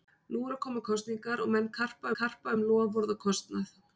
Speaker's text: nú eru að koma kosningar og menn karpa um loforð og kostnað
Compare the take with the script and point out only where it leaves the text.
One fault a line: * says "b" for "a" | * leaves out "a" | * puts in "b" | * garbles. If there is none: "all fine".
* puts in "karpa"